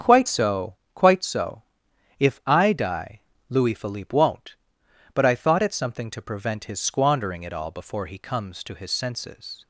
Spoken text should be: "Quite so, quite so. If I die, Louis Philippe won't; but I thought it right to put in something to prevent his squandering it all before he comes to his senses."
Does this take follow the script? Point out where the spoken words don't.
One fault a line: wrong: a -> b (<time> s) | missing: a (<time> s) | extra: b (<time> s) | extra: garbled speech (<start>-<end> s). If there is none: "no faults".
missing: right to put in (5.7 s)